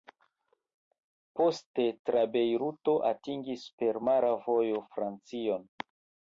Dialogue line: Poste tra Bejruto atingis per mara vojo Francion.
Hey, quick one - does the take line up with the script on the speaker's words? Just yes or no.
yes